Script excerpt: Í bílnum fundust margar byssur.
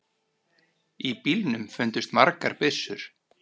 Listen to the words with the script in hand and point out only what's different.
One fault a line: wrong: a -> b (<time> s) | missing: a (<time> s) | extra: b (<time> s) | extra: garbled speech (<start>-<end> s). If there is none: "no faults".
no faults